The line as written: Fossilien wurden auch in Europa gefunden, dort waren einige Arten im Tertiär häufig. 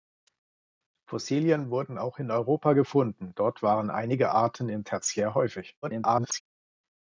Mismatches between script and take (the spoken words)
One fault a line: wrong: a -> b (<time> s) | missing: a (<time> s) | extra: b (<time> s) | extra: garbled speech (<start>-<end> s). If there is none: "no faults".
extra: garbled speech (5.8-6.4 s)